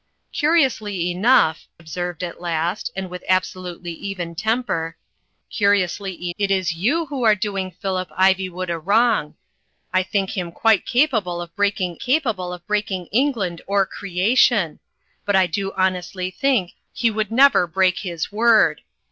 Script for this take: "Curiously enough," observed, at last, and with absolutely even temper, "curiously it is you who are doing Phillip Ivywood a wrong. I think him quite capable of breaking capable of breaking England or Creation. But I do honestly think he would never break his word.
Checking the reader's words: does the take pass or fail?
pass